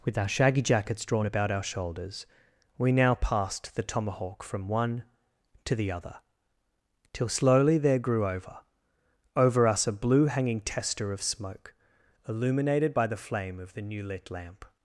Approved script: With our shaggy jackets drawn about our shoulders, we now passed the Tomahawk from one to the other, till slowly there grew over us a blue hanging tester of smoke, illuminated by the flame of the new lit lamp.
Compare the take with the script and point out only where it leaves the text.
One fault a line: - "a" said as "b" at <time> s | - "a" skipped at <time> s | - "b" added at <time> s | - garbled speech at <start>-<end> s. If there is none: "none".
- "over" added at 9.4 s